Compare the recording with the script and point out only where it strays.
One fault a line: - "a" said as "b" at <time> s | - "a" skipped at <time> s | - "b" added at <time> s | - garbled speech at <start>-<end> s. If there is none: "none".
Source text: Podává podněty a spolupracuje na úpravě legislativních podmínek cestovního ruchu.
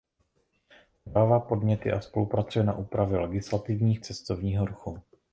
- "podmínek" skipped at 4.0 s